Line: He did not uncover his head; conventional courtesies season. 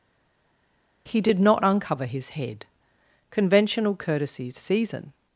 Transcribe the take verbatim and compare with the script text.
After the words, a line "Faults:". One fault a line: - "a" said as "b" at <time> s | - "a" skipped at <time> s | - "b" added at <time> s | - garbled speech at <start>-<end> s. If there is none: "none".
He did not uncover his head; conventional courtesies season.
Faults:
none